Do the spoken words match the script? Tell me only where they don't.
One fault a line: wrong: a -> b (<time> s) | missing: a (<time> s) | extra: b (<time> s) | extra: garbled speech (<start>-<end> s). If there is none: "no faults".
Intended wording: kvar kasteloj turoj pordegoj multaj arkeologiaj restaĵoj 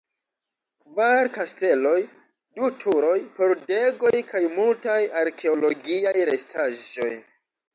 extra: du (2.6 s)
extra: kaj (4.3 s)